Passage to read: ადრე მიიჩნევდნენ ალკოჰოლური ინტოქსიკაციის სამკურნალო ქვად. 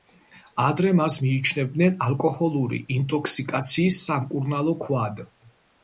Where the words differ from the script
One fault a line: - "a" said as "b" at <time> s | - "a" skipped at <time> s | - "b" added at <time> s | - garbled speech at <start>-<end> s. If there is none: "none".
- "მას" added at 1.0 s